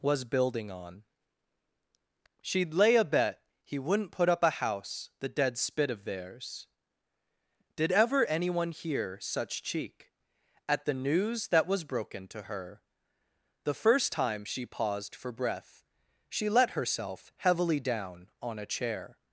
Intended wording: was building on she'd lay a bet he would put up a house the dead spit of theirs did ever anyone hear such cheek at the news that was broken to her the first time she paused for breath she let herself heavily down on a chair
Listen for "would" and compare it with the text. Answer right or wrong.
wrong